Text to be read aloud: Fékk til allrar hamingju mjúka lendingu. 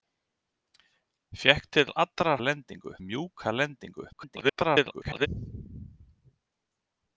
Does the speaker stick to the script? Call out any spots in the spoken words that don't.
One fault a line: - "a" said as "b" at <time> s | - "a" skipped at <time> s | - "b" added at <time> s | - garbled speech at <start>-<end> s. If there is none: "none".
- "hamingju" said as "lendingu" at 2.4 s
- garbled speech at 4.1-5.3 s